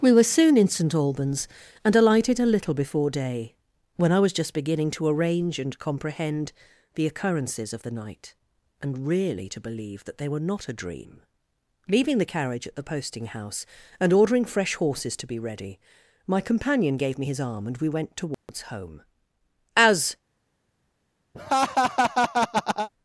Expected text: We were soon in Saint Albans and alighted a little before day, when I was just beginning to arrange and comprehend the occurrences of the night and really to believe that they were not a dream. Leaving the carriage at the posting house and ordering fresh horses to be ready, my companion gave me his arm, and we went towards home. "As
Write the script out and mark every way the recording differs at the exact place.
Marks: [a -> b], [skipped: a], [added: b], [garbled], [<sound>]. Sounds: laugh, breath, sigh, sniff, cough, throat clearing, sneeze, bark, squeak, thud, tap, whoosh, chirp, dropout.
We were soon in Saint Albans and alighted a little before day, when I was just beginning to arrange and comprehend the occurrences of the night and really to believe that they were not a dream. Leaving the carriage at the posting house and ordering fresh horses to be ready, my companion gave me his arm, and we went towards [dropout] home. "As [laugh]